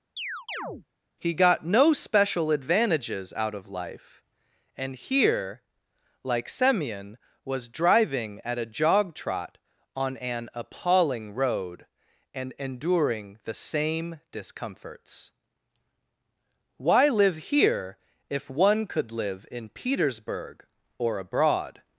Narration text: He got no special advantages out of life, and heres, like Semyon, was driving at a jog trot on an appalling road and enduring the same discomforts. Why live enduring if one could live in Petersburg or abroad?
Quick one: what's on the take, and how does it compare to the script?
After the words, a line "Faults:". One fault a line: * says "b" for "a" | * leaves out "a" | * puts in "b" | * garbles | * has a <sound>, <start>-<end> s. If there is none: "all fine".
He got no special advantages out of life, and here, like Semyon, was driving at a jog trot on an appalling road and enduring the same discomforts. Why live here if one could live in Petersburg or abroad?
Faults:
* has a chirp, 0.2-0.9 s
* says "here" for "heres"
* says "here" for "enduring"